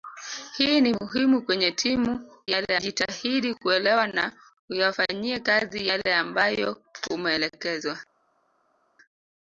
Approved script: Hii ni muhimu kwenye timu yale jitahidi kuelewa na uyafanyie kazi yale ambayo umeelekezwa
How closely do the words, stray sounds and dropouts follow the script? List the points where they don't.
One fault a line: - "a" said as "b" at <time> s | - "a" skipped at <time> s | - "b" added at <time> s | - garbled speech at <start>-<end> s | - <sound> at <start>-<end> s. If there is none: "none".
none